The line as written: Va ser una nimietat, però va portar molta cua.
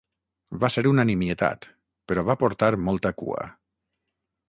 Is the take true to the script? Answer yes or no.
yes